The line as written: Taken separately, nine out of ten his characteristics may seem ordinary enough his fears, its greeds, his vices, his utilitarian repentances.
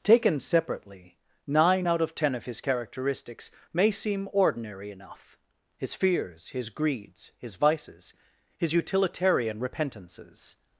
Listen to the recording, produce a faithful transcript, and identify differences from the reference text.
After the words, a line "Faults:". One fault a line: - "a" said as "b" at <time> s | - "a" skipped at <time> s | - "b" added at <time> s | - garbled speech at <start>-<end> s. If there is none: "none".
Taken separately, nine out of ten of his characteristics may seem ordinary enough his fears, his greeds, his vices, his utilitarian repentances.
Faults:
- "of" added at 2.3 s
- "its" said as "his" at 6.5 s